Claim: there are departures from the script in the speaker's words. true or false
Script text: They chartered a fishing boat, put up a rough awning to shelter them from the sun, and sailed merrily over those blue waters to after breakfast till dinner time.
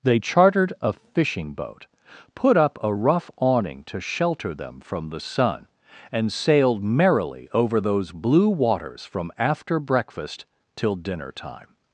true